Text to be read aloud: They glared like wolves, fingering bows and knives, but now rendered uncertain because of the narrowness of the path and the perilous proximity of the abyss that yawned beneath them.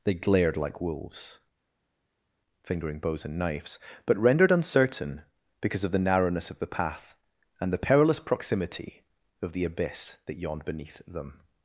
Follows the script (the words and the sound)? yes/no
no